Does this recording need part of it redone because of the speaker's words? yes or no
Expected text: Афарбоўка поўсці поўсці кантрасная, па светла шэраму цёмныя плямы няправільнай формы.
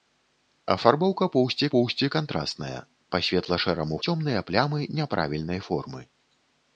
no